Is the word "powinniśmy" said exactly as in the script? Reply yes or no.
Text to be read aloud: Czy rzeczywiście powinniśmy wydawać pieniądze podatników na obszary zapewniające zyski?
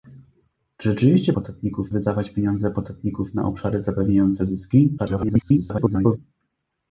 no